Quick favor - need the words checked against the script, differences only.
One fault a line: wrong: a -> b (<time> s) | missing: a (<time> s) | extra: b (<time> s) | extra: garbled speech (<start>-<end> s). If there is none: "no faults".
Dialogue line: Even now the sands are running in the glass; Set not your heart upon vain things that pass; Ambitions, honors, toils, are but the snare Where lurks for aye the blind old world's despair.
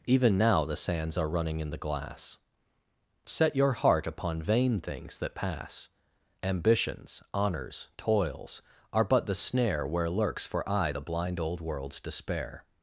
missing: not (3.5 s)